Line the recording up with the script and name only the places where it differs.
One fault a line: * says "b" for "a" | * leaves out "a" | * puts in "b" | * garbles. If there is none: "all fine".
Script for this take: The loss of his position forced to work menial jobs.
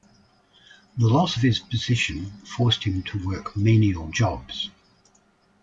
* puts in "him"